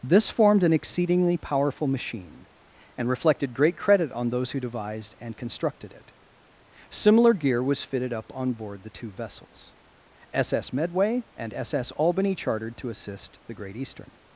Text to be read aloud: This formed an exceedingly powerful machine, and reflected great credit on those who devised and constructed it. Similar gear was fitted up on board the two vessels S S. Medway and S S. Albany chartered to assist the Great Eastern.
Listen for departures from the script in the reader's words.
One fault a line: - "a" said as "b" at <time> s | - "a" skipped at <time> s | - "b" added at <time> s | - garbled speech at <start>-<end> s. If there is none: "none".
none